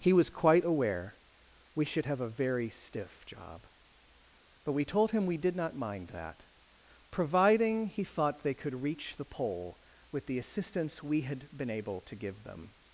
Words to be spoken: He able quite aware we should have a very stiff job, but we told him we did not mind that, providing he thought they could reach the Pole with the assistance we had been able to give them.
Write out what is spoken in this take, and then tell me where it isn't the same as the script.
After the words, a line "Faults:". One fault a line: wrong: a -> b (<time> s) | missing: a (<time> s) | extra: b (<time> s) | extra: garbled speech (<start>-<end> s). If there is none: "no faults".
He was quite aware we should have a very stiff job, but we told him we did not mind that, providing he thought they could reach the Pole with the assistance we had been able to give them.
Faults:
wrong: able -> was (0.1 s)